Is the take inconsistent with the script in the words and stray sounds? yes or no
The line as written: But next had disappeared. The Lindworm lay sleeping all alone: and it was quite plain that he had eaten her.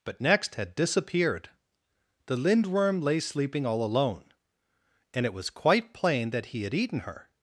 no